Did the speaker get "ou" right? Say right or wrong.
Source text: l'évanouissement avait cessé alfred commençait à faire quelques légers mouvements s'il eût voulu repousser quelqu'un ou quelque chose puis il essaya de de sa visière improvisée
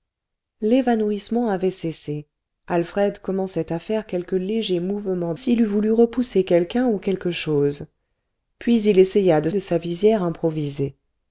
right